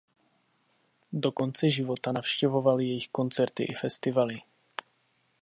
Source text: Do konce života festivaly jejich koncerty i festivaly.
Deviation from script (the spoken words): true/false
true